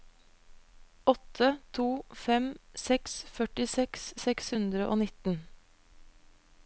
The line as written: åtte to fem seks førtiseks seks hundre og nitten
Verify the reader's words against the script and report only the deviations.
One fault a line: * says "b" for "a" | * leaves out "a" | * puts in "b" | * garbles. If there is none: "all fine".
all fine